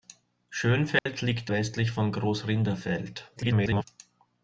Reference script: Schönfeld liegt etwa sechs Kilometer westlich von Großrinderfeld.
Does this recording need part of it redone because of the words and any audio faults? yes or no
yes